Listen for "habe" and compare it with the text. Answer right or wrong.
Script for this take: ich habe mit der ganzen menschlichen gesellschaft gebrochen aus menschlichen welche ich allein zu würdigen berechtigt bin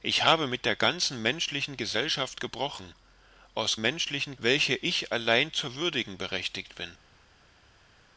right